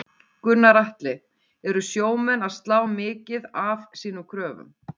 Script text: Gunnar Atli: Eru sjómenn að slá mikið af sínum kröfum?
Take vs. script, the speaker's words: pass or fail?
pass